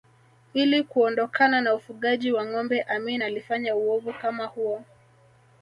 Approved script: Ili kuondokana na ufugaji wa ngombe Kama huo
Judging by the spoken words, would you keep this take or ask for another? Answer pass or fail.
fail